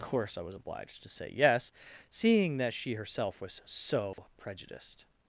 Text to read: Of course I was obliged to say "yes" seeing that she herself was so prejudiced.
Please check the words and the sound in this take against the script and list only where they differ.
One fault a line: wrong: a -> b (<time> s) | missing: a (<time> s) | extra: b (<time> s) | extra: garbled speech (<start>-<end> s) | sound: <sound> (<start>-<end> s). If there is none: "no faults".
missing: Of (0.0 s)
sound: dropout (4.1-4.2 s)